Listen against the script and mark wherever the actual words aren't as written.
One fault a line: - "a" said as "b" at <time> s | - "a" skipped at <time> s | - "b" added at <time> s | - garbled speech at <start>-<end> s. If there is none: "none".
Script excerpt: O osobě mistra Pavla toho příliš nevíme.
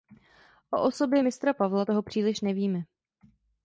none